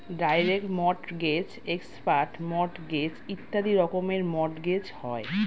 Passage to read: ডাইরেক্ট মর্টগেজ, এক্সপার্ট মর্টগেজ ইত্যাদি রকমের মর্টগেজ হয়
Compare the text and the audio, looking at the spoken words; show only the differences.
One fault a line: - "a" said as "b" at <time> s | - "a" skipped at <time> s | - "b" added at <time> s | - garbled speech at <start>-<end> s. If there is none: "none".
none